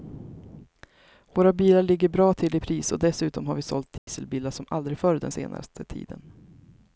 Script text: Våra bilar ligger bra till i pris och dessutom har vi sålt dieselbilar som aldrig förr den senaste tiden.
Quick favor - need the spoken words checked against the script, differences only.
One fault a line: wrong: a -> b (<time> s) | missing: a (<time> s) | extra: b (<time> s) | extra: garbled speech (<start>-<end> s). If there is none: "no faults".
no faults